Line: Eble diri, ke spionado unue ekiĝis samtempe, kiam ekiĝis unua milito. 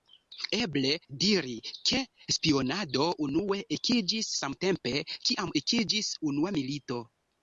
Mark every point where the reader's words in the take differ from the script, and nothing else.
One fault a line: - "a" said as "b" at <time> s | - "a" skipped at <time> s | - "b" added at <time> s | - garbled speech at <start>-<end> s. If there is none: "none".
none